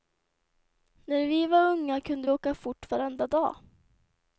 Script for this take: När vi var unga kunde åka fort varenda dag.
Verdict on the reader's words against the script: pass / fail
pass